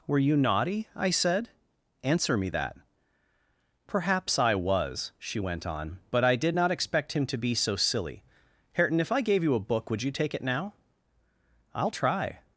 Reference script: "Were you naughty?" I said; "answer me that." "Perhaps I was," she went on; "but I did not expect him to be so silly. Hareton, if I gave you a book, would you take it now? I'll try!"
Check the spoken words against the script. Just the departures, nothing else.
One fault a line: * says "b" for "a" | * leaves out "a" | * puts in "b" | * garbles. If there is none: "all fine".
all fine